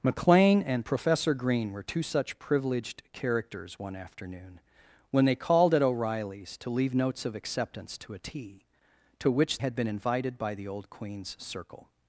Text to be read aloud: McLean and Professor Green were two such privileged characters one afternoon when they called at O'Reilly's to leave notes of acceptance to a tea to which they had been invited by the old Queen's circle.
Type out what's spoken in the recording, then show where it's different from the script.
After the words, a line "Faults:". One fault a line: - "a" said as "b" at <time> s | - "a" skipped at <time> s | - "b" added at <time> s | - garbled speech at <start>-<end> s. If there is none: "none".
McLean and Professor Green were two such privileged characters one afternoon when they called at O'Reilly's to leave notes of acceptance to a tea to which had been invited by the old Queen's circle.
Faults:
- "they" skipped at 9.6 s